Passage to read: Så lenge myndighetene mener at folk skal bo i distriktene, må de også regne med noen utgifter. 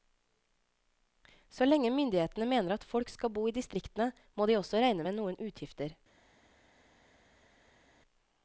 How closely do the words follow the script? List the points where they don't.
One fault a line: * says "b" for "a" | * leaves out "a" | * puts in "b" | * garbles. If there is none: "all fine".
all fine